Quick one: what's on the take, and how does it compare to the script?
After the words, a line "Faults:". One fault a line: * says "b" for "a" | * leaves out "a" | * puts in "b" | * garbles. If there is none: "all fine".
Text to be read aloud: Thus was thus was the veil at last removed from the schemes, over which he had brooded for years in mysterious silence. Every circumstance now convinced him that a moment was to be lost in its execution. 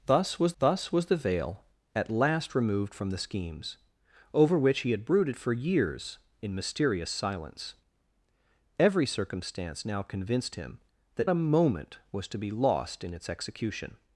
Thus was thus was the veil at last removed from the schemes, over which he had brooded for years in mysterious silence. Every circumstance now convinced him that a moment was to be lost in its execution.
Faults:
all fine